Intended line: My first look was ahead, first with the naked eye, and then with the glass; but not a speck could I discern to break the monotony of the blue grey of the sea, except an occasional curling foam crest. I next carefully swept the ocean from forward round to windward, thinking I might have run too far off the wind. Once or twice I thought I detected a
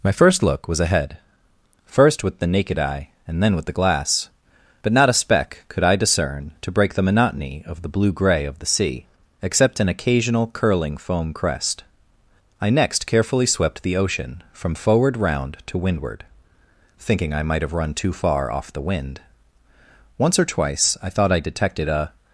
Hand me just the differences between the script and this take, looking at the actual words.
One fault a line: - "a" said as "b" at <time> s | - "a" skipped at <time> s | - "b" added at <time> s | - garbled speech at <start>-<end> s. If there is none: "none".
none